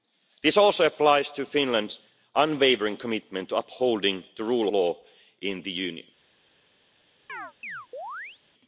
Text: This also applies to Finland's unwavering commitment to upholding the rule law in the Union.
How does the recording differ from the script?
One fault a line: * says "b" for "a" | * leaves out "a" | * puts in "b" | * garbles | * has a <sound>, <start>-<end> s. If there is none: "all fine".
* has a chirp, 7.3-8.4 s